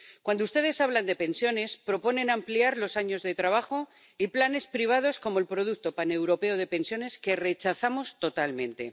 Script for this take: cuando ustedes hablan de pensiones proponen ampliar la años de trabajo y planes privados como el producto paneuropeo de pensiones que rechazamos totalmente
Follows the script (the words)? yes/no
no